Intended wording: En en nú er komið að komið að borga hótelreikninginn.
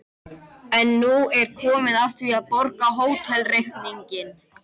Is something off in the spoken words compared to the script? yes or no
yes